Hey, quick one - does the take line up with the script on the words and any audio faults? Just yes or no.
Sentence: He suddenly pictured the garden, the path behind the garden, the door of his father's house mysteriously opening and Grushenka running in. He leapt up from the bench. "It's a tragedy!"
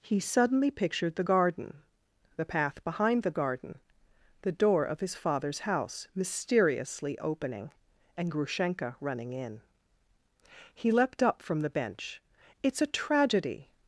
yes